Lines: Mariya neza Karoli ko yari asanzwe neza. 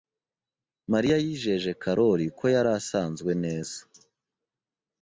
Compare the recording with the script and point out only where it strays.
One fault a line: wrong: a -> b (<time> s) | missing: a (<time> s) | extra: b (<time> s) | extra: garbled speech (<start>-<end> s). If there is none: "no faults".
wrong: neza -> yijeje (1.2 s)